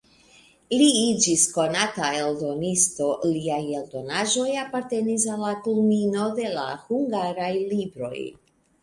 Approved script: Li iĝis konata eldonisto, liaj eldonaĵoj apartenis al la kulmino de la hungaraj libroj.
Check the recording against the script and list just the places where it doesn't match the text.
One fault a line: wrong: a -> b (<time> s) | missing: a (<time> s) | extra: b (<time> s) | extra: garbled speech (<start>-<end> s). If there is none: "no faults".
no faults